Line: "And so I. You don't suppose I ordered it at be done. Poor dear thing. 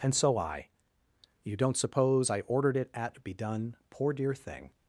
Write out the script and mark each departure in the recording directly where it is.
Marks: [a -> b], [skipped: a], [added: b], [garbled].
"And so I. You don't suppose I ordered it at be done. Poor dear thing.